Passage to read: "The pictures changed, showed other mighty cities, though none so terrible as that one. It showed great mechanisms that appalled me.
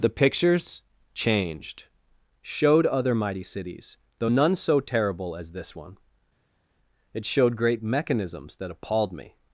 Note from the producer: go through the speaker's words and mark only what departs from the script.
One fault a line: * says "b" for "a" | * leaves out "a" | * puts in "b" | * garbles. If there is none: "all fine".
* says "this" for "that"